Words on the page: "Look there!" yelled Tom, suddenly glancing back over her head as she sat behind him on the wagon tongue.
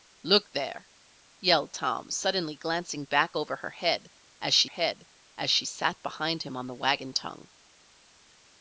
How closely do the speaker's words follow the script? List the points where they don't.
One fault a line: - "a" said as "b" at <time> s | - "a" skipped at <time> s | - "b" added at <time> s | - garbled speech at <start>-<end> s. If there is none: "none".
- "head as she" added at 4.6 s